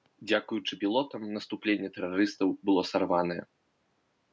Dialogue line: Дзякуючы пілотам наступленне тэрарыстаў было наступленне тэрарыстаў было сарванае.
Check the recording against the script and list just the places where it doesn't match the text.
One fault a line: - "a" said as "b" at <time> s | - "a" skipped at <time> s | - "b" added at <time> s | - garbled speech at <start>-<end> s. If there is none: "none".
- "наступленне тэрарыстаў было" skipped at 2.9 s